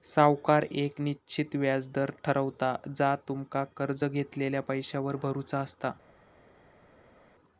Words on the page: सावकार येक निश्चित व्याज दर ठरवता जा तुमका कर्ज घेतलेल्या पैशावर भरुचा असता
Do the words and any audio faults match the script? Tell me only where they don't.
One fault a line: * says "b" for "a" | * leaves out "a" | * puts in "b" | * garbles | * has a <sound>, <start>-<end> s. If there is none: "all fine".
all fine